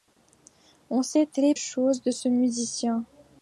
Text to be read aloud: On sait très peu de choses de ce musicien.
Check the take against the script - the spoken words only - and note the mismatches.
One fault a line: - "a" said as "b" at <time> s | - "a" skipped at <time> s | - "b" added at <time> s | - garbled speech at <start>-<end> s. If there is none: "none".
- "peu de" skipped at 1.5 s